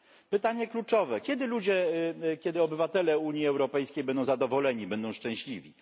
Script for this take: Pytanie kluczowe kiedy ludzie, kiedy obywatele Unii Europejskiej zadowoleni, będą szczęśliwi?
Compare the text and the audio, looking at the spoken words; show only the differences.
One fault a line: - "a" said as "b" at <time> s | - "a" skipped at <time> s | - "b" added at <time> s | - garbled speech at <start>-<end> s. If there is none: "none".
- "będą" added at 4.0 s